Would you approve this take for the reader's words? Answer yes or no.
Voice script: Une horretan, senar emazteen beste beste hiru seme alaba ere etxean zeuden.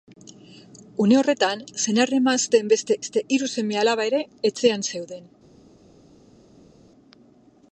yes